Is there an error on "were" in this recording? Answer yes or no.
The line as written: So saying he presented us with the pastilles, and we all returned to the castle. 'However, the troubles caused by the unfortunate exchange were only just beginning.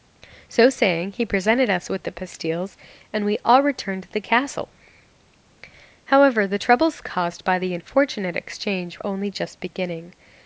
yes